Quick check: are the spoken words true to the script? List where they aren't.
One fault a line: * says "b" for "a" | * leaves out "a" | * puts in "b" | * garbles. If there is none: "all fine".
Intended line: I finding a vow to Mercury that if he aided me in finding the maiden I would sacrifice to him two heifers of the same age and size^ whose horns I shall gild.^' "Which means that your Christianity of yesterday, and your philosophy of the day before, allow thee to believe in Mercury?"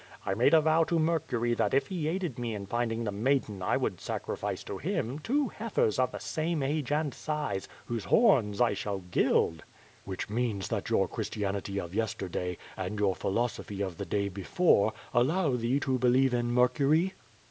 * says "made" for "finding"